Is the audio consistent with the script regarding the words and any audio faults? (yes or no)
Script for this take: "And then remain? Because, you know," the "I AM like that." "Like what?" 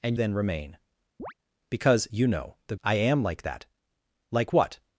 no